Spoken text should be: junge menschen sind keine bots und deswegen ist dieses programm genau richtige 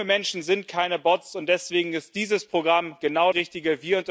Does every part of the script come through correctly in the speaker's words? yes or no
yes